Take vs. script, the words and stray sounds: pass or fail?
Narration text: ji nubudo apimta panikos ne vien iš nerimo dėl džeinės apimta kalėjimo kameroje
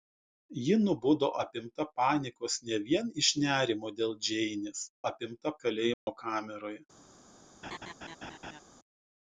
fail